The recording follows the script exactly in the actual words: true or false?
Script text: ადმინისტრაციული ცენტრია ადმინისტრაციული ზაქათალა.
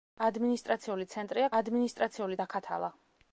true